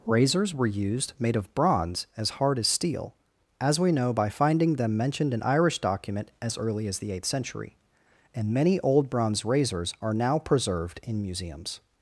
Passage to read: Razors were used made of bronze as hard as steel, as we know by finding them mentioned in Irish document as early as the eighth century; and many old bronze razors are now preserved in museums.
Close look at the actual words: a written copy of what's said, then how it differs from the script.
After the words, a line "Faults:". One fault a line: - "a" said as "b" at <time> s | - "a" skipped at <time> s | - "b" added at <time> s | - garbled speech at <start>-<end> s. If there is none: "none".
Razors were used made of bronze as hard as steel, as we know by finding them mentioned in Irish document as early as the eighth century; and many old bronze razors are now preserved in museums.
Faults:
none